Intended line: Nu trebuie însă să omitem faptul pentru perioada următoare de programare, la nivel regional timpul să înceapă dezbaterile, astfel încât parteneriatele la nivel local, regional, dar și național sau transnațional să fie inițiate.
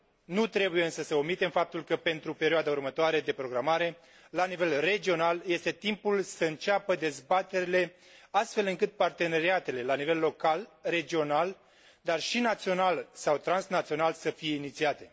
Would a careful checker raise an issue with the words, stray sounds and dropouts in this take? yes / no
yes